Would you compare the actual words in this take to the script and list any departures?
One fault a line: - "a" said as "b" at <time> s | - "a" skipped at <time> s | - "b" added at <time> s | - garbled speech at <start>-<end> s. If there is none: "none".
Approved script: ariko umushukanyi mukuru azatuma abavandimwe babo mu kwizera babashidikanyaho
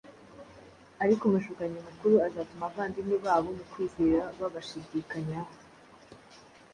none